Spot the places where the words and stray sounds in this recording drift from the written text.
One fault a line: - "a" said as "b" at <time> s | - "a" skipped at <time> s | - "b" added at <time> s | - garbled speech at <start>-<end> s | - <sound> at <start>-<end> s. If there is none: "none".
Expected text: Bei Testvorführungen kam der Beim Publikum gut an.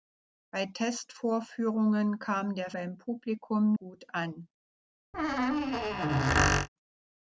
- squeak at 5.1-6.7 s